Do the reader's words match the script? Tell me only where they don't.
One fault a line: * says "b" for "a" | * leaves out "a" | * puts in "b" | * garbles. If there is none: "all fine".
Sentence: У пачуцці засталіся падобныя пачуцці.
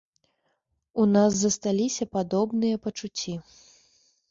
* says "нас" for "пачуцці"